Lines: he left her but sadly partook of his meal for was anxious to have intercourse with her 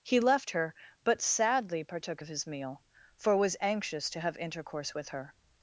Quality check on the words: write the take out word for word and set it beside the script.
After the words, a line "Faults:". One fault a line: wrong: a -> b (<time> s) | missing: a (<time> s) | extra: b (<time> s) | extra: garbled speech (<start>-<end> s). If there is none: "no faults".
he left her but sadly partook of his meal for was anxious to have intercourse with her
Faults:
no faults